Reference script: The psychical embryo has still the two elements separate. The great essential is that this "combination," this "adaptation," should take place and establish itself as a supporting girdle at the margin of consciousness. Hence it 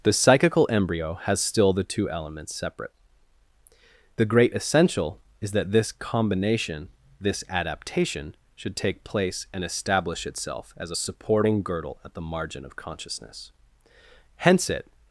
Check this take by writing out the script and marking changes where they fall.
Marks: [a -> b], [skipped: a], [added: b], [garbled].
The psychical embryo has still the two elements separate. The great essential is that this "combination," this "adaptation," should take place and establish itself as a supporting girdle at the margin of consciousness. Hence it